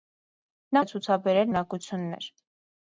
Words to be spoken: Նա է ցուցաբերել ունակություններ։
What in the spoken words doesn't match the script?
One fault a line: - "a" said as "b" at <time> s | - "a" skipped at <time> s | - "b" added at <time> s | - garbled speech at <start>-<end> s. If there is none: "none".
none